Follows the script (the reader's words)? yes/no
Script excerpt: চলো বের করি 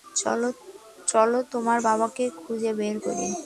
no